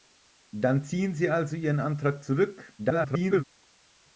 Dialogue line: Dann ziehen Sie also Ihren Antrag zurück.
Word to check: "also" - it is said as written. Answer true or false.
true